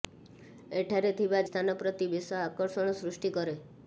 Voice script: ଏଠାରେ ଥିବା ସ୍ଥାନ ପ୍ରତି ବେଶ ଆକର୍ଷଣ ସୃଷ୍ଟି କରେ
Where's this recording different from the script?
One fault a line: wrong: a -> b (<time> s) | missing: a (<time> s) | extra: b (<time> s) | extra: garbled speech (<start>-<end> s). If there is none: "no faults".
no faults